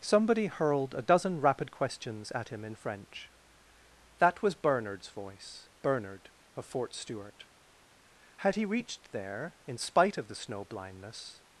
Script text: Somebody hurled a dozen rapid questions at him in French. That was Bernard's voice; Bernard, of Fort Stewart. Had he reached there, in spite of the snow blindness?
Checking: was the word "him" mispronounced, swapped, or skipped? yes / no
no